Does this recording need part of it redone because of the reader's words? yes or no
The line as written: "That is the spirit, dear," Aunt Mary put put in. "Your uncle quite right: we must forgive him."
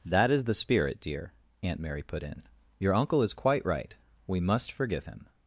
yes